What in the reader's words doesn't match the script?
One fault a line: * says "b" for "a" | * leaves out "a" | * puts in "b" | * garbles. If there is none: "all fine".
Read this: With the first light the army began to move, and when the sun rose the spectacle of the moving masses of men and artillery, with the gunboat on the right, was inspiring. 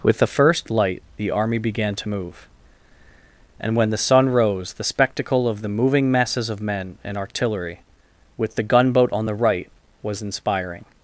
all fine